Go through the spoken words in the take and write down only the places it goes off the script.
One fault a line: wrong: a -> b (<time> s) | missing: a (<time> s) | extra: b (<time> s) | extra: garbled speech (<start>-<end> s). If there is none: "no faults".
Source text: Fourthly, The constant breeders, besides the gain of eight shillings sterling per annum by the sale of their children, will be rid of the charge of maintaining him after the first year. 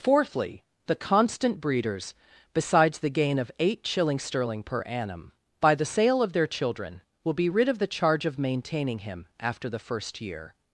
no faults